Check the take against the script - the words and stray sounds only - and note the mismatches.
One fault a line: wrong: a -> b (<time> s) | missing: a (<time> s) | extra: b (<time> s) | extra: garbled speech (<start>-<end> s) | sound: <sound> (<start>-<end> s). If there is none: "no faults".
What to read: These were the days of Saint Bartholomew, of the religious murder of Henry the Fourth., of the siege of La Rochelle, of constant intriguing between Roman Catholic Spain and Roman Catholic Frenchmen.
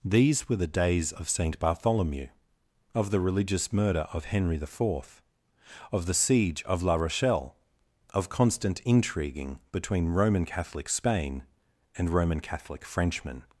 no faults